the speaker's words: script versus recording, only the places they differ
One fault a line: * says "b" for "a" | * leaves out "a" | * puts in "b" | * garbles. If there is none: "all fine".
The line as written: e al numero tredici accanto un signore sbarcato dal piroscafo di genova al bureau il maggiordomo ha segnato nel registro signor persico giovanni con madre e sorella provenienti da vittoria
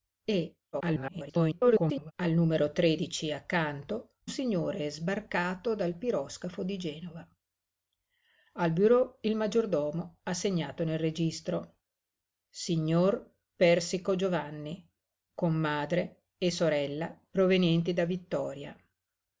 * garbles
* leaves out "un"